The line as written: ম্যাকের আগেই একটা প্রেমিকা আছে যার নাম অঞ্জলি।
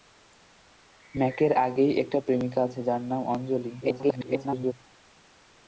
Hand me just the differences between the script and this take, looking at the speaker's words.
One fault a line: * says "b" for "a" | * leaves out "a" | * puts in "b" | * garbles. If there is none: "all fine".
* garbles